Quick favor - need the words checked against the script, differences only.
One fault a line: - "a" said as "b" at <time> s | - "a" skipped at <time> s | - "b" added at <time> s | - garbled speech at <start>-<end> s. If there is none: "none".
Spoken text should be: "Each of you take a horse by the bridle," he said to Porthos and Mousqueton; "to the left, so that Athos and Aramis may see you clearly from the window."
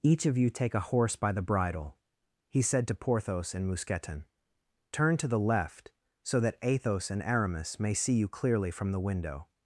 - "turn" added at 4.9 s